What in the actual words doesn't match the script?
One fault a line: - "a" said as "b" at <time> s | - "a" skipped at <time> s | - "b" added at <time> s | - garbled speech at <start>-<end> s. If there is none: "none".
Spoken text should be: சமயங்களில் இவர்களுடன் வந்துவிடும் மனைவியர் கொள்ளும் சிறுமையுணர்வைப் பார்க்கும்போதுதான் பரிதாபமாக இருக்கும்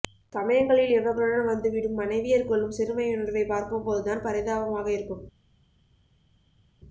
none